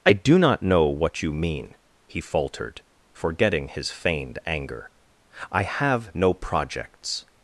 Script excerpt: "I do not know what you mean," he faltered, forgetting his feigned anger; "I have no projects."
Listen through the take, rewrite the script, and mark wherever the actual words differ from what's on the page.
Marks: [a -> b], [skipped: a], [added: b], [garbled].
"I do not know what you mean," he faltered, forgetting his feigned anger; "I have no projects."